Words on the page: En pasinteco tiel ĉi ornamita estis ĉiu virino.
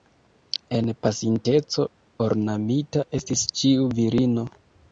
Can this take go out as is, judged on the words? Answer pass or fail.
fail